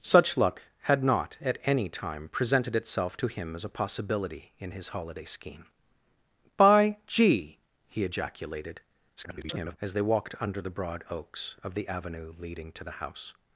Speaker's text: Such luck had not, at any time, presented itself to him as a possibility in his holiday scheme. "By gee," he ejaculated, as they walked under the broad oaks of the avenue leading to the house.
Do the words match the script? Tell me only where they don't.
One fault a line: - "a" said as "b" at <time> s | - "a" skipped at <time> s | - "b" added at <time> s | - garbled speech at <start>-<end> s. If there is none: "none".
- garbled speech at 9.2-9.8 s